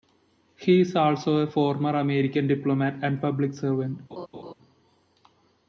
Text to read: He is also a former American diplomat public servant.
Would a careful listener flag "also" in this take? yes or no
no